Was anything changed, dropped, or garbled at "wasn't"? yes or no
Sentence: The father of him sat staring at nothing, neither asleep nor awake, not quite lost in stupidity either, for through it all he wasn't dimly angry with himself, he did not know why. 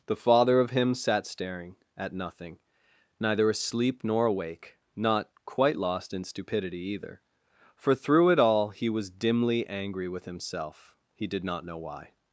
yes